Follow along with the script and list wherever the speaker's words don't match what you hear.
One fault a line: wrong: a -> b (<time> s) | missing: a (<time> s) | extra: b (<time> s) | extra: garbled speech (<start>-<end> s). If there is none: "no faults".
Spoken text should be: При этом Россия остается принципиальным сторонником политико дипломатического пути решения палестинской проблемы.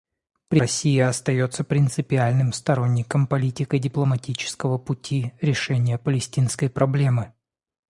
missing: этом (0.6 s)